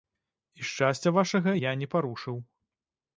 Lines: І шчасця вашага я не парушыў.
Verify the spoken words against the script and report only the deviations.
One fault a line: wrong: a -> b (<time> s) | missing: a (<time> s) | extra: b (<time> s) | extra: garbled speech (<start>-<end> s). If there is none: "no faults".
no faults